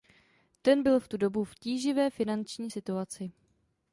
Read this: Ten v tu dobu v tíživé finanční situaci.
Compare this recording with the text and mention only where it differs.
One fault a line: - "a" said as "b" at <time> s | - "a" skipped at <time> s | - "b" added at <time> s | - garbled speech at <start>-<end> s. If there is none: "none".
- "byl" added at 0.8 s